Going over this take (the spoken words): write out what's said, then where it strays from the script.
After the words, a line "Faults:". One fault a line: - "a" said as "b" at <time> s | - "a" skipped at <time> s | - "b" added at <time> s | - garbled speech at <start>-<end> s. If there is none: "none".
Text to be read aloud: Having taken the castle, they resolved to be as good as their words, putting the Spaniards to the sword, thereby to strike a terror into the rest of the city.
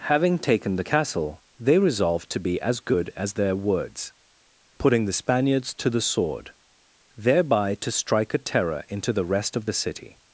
Having taken the castle, they resolved to be as good as their words, putting the Spaniards to the sword, thereby to strike a terror into the rest of the city.
Faults:
none